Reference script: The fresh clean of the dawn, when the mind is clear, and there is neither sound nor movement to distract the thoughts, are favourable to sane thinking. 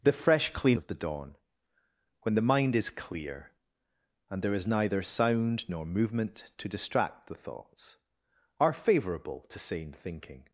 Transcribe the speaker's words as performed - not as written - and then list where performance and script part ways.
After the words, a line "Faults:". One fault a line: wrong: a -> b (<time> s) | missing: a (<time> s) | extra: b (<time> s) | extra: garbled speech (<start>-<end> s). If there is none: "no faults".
The fresh clean of the dawn, when the mind is clear, and there is neither sound nor movement to distract the thoughts, are favourable to sane thinking.
Faults:
no faults